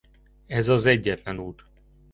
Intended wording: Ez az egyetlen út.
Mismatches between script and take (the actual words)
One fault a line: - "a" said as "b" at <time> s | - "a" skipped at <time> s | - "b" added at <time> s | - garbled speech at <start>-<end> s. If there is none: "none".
none